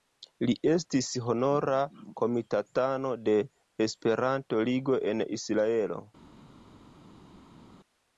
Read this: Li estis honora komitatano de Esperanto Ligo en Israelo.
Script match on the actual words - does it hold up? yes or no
yes